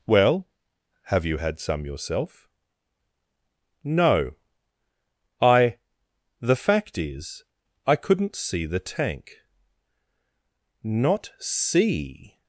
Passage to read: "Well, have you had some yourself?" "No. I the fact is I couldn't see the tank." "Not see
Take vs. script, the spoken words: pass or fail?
pass